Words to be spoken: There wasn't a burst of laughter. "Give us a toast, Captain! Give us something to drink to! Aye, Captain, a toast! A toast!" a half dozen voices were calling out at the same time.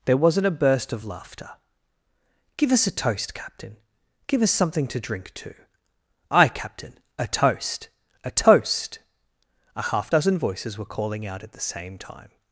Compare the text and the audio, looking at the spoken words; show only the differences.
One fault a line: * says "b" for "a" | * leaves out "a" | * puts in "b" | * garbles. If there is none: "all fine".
all fine